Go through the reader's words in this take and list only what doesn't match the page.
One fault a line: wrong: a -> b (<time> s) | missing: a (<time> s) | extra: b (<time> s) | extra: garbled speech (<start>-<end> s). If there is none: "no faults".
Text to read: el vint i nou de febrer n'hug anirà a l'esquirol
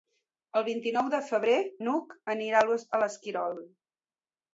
no faults